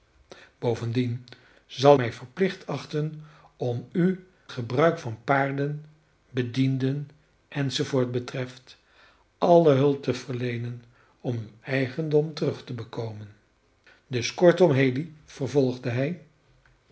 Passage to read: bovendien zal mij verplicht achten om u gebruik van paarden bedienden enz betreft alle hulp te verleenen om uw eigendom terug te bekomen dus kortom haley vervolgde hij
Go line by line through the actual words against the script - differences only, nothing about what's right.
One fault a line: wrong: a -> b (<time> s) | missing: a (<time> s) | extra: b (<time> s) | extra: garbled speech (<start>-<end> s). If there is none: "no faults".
no faults